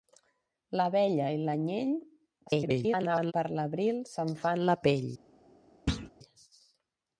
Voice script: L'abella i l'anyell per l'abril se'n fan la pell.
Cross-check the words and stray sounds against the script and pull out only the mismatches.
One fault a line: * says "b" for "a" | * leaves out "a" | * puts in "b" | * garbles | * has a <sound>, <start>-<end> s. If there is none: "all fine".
* garbles
* has a thud, 5.9-6.1 s